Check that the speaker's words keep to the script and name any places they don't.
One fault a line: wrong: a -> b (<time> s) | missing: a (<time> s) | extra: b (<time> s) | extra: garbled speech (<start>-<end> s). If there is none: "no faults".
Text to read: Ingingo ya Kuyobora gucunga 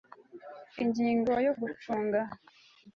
missing: Kuyobora (1.5 s)